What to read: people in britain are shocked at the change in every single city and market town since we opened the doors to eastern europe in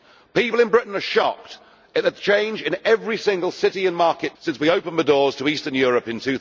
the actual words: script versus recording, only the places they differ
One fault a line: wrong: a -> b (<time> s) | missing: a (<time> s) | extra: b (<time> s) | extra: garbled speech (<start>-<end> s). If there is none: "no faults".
missing: town (4.4 s)